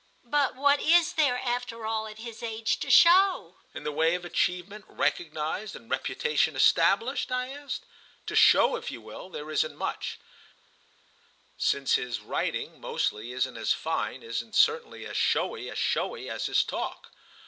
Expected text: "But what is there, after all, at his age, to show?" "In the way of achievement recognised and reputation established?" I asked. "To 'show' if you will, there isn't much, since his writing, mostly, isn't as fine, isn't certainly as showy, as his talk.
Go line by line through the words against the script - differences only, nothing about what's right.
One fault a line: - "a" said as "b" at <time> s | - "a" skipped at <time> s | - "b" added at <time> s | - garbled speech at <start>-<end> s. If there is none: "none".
- "showy as" added at 15.8 s